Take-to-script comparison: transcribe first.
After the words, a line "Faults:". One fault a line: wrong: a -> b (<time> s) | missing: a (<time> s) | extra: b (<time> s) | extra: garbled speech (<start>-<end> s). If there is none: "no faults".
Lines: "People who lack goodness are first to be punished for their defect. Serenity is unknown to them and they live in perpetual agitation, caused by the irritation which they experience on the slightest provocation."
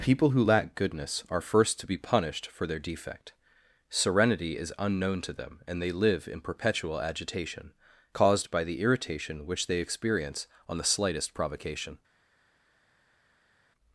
"People who lack goodness are first to be punished for their defect. Serenity is unknown to them and they live in perpetual agitation, caused by the irritation which they experience on the slightest provocation."
Faults:
no faults